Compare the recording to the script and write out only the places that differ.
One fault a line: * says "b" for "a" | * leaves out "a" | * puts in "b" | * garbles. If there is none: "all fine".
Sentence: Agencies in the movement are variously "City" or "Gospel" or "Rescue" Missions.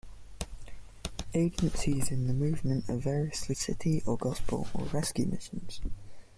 all fine